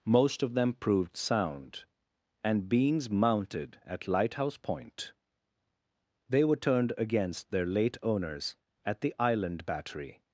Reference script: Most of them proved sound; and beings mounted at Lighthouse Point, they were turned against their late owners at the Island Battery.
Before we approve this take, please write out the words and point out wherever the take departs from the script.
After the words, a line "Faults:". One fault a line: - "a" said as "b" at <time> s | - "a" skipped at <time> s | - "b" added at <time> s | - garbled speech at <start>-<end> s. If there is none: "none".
Most of them proved sound; and beings mounted at Lighthouse Point, they were turned against their late owners at the Island Battery.
Faults:
none